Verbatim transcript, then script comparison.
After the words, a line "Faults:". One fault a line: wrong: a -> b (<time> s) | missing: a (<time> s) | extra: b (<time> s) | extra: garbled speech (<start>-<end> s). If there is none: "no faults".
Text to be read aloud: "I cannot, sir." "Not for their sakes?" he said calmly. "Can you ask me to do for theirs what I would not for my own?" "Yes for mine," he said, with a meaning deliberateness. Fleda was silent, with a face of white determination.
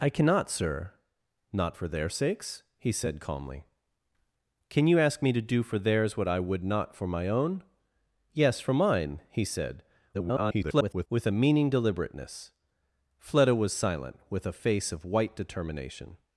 "I cannot, sir." "Not for their sakes?" he said calmly. "Can you ask me to do for theirs what I would not for my own?" "Yes for mine," he said, [garbled] with a meaning deliberateness. Fleda was silent, with a face of white determination.
Faults:
extra: garbled speech (10.1-11.1 s)